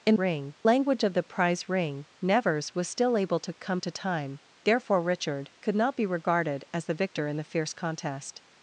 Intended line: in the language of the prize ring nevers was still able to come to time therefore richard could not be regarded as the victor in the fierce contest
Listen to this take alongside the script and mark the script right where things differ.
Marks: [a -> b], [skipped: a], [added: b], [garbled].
in [the -> ring] language of the prize ring nevers was still able to come to time therefore richard could not be regarded as the victor in the fierce contest